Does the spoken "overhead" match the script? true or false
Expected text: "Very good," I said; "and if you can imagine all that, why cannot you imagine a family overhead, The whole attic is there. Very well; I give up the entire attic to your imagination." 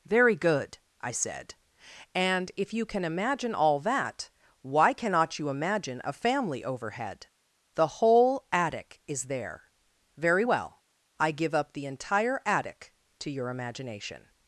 true